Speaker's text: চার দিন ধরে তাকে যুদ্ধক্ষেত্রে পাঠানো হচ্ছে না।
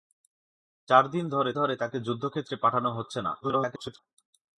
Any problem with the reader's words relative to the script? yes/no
yes